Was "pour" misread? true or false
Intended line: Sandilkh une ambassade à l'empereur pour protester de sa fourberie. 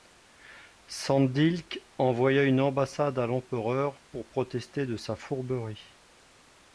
false